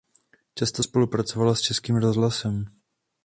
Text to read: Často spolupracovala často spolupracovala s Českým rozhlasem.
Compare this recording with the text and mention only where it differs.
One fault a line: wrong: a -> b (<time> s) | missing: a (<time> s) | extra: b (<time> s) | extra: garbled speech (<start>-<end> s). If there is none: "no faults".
missing: často spolupracovala (1.5 s)